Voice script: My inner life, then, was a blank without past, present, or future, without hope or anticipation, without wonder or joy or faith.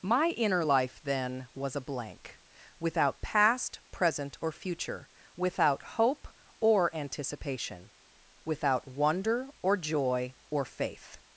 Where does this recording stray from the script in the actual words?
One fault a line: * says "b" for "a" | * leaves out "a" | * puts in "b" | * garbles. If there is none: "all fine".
all fine